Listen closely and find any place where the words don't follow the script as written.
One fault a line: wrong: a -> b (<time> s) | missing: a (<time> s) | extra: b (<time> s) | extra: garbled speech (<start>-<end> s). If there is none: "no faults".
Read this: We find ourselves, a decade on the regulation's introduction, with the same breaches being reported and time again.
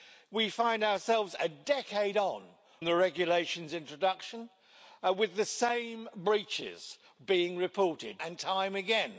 no faults